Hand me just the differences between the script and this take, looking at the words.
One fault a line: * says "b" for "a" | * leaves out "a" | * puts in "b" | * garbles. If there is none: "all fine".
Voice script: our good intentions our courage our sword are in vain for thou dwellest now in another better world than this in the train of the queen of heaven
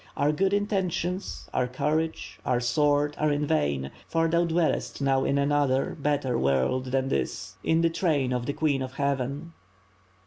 all fine